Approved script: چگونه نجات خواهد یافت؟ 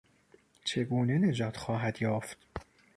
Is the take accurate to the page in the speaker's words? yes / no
yes